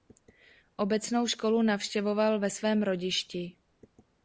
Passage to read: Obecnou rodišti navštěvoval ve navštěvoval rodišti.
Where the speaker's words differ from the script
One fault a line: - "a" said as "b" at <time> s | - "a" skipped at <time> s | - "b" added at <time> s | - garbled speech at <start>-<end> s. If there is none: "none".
- "rodišti" said as "školu" at 1.3 s
- "navštěvoval" said as "svém" at 2.5 s